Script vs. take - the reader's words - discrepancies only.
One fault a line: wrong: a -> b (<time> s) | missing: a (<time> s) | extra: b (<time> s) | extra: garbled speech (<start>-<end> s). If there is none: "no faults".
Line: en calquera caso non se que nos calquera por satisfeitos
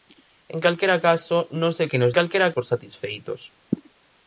no faults